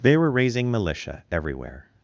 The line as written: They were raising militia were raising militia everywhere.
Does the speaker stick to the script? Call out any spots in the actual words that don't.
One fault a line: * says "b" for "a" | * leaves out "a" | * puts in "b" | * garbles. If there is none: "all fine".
* leaves out "were raising militia"